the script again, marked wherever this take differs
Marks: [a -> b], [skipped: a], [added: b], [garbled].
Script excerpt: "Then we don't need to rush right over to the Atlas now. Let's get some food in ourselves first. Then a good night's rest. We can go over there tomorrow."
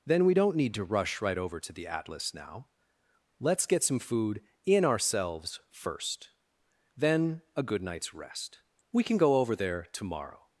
"Then we don't need to rush right over to the Atlas now. Let's get some food in ourselves first. Then a good night's rest. We can go over there tomorrow."